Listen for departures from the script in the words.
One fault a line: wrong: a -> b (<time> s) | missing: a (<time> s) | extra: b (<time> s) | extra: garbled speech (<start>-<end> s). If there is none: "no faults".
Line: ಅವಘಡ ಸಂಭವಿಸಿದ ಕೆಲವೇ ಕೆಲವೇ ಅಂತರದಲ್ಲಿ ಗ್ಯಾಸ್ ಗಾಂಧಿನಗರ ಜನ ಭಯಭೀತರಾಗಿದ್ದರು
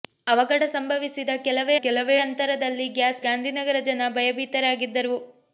no faults